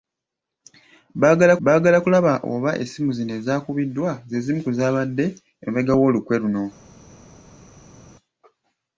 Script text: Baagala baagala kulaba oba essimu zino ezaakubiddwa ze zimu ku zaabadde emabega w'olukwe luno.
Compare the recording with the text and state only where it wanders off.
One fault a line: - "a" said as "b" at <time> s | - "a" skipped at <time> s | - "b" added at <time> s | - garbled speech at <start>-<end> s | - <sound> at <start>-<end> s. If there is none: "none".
none